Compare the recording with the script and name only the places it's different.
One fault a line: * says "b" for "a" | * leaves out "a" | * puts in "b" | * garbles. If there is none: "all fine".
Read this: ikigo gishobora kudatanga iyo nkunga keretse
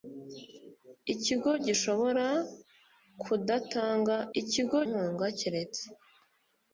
* says "ikigo" for "iyo"